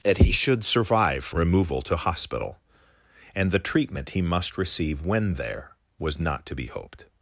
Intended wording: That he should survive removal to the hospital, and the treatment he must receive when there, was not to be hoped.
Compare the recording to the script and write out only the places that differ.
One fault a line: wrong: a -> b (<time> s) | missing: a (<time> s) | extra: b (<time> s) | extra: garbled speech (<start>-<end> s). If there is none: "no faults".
missing: the (2.0 s)